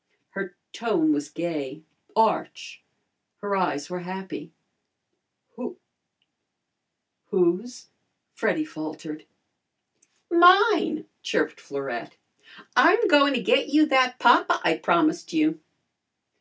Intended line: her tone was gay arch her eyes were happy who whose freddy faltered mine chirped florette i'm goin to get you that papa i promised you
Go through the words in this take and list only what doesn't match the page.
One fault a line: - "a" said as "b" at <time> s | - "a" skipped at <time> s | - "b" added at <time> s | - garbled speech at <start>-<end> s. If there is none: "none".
none